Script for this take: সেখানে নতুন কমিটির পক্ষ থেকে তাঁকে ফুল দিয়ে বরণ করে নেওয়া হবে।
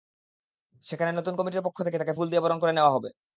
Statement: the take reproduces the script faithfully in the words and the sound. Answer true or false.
true